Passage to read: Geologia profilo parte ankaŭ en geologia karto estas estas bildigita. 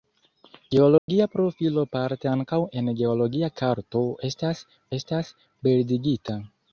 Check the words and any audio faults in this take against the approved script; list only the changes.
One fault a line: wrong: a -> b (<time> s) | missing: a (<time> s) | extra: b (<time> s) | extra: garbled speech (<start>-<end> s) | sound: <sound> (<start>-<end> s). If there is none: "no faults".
sound: dropout (1.0-1.1 s)